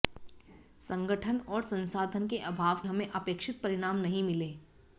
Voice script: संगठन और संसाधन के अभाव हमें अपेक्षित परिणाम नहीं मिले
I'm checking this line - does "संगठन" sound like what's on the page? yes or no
yes